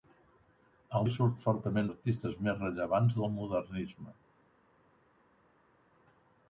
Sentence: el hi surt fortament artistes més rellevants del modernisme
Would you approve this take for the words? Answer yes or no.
yes